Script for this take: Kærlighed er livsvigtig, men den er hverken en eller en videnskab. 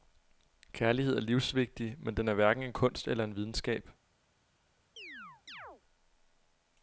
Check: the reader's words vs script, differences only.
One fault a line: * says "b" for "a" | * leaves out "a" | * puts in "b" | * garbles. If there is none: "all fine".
* puts in "kunst"